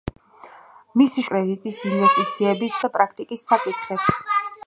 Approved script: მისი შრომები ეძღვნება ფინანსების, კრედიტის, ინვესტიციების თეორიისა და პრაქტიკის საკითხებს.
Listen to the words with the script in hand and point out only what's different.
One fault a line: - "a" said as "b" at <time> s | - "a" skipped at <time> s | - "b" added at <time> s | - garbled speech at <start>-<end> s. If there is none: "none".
- "შრომები ეძღვნება ფინანსების" skipped at 1.2 s
- "თეორიისა" skipped at 2.8 s